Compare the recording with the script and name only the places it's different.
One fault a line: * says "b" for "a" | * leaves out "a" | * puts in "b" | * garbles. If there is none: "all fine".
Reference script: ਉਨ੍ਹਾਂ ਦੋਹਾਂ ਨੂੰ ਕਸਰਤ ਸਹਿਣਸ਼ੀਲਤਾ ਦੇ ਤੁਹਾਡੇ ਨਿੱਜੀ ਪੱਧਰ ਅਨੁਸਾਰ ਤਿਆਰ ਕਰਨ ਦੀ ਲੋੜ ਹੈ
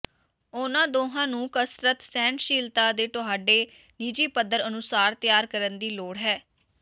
all fine